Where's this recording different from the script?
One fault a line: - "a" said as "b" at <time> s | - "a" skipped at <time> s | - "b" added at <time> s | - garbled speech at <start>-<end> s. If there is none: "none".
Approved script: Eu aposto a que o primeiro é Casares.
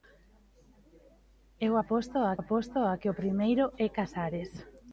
- "aposto a" added at 2.4 s